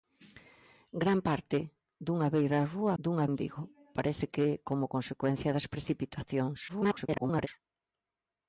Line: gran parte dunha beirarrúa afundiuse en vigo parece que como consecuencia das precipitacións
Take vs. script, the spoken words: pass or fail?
fail